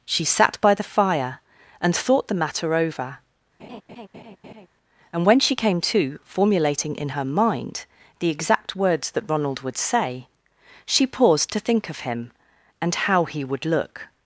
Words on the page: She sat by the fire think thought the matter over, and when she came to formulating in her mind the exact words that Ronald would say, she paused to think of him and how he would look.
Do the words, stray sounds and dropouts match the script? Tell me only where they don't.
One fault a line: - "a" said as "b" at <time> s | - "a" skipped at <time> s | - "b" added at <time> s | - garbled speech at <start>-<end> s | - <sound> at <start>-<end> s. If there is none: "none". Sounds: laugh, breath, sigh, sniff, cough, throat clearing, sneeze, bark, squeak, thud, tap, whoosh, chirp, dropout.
- "think" said as "and" at 1.8 s
- laugh at 3.6-4.7 s